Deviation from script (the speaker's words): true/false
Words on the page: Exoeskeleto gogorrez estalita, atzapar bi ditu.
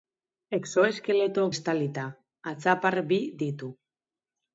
true